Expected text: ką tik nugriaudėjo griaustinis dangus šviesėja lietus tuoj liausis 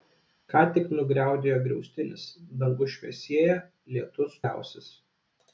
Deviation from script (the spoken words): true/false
true